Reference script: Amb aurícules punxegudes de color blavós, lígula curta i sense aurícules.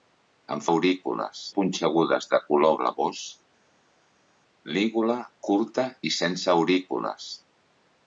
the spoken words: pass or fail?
pass